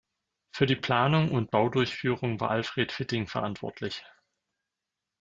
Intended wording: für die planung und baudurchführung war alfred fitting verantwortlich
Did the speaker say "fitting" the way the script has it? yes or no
yes